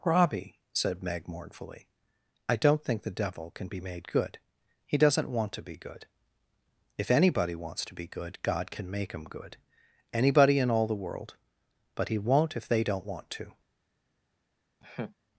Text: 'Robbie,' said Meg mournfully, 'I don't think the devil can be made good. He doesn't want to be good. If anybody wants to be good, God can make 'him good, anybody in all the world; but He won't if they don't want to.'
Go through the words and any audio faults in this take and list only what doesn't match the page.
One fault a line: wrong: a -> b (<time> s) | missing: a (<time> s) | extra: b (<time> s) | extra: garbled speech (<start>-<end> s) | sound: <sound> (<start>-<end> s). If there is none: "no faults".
sound: laugh (14.8-15.2 s)